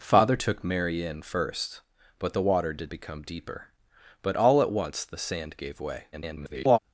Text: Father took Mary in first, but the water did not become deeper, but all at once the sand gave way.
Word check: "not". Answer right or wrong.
wrong